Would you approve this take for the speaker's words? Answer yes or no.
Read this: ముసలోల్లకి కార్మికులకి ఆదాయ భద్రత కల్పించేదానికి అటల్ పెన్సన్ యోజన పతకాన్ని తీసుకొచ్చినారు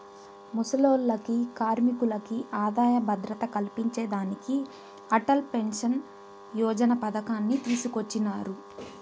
yes